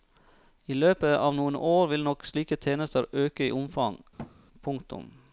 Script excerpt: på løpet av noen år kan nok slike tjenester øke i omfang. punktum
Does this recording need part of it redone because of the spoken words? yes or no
yes